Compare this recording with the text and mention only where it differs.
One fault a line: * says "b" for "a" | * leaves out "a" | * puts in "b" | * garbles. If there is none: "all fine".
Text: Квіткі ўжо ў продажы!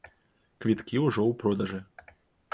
all fine